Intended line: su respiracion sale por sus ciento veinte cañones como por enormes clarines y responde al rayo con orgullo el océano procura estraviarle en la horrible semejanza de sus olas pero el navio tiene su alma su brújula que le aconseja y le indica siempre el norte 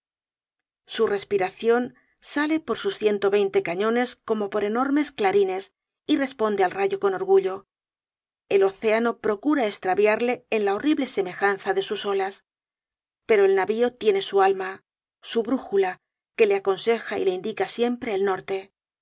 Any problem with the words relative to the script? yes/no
no